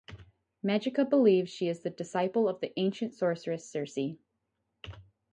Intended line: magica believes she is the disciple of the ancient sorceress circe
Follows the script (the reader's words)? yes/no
yes